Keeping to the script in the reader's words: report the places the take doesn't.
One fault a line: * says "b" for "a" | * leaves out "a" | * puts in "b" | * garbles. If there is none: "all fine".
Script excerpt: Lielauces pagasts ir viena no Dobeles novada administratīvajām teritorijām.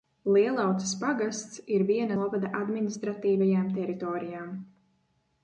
* leaves out "no Dobeles"